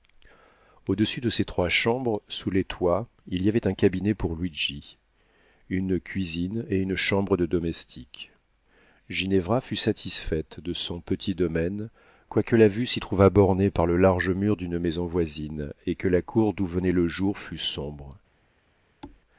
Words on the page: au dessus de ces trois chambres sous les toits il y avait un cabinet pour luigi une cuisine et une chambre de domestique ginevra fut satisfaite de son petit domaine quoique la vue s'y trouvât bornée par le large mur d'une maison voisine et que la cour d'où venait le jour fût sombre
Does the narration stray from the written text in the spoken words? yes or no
no